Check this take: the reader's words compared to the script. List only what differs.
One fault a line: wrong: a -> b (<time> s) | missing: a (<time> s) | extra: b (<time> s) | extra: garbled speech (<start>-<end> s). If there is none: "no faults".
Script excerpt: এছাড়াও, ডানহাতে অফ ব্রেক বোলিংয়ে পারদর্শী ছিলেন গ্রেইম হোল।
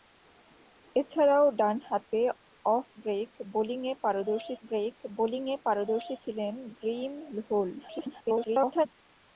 extra: ব্রেক বোলিংয়ে পারদর্শী (4.6 s)
extra: garbled speech (7.8-8.9 s)